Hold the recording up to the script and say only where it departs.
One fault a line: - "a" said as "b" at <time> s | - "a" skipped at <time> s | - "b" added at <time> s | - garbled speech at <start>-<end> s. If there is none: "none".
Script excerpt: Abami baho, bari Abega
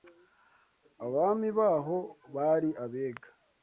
none